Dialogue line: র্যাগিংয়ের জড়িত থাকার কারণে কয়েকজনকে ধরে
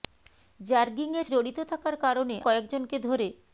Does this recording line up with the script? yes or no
yes